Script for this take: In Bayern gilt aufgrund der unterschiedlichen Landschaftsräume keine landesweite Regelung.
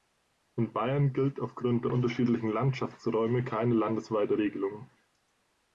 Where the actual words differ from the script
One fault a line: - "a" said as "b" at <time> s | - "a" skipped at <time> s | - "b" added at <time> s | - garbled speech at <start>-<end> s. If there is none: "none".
none